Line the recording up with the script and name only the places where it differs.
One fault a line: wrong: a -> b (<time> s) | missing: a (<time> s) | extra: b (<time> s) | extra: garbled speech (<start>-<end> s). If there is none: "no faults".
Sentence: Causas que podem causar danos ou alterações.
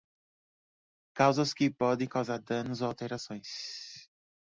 no faults